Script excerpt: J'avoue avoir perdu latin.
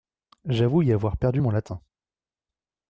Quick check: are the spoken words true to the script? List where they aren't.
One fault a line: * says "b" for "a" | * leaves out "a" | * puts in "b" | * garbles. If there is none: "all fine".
* puts in "y"
* puts in "mon"